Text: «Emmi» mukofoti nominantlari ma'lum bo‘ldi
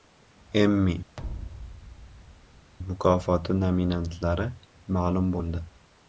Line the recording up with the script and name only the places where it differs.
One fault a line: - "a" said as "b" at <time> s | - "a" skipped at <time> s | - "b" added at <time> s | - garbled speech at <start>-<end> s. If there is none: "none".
none